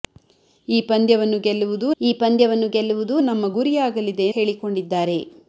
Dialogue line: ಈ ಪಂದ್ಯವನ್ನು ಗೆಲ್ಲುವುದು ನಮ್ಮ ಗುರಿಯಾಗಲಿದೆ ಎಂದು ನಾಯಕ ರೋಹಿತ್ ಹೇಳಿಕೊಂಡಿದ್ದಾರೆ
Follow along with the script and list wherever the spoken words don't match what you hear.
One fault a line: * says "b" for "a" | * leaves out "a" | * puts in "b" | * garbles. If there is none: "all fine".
* says "ಈ ಪಂದ್ಯವನ್ನು ಗೆಲ್ಲುವುದು ನಮ್ಮ ಗುರಿಯಾಗಲಿದೆ" for "ನಮ್ಮ ಗುರಿಯಾಗಲಿದೆ ಎಂದು ನಾಯಕ ರೋಹಿತ್"